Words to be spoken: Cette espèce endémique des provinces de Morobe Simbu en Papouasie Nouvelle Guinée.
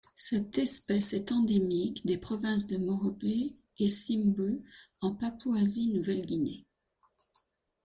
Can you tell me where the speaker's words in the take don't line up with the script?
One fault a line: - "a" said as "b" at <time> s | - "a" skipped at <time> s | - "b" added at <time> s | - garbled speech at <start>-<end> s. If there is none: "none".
- "est" added at 1.1 s
- "et" added at 3.2 s